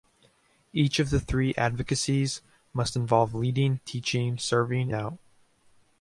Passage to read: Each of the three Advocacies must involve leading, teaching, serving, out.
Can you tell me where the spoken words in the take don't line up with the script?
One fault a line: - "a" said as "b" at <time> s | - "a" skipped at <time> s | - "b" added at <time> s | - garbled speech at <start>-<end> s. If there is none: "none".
none